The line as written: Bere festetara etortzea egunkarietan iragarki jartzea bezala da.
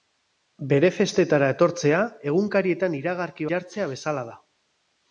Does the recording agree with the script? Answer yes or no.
yes